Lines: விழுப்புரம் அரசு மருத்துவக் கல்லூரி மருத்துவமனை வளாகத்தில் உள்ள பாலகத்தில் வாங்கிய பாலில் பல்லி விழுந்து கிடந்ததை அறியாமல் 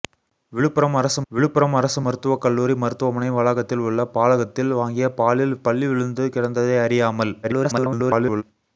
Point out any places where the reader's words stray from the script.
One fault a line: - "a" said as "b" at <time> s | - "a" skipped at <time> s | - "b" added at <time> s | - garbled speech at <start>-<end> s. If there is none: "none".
- "விழுப்புரம் அரசு" added at 1.3 s
- garbled speech at 7.4-8.4 s